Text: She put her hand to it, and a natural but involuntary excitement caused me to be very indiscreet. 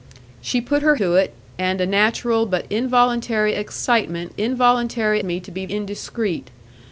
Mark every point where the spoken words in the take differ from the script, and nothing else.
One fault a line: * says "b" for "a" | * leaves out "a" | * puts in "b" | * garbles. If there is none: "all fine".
* leaves out "hand"
* says "involuntary" for "caused"
* leaves out "very"